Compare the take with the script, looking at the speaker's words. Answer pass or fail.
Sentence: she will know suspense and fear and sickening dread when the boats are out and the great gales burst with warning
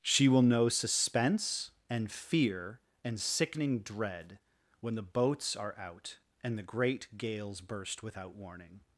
fail